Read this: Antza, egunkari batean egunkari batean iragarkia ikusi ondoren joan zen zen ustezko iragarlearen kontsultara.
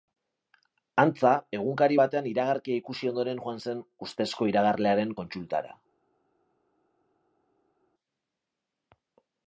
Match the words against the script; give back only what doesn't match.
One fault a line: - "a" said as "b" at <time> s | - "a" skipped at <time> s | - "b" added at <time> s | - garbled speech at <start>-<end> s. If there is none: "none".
- "egunkari batean" skipped at 2.3 s
- "zen" skipped at 3.8 s